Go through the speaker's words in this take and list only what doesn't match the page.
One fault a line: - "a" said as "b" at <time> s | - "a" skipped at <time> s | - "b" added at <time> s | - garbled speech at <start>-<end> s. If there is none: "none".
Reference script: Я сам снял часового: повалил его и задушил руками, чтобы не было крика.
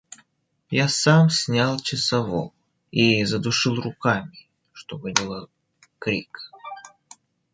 - "повалил его" skipped at 2.5 s
- "не" skipped at 5.1 s